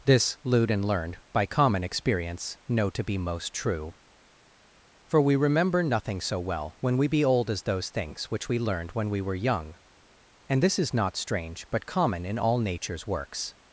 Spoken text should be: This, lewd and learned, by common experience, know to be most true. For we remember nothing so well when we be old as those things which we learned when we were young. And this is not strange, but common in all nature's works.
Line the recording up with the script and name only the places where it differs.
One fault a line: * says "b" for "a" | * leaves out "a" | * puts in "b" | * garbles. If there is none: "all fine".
all fine